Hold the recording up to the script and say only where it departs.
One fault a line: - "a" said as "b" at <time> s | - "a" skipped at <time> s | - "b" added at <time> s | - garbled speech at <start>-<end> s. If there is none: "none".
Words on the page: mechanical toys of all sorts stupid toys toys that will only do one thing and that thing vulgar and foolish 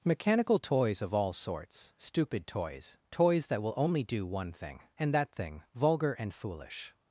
none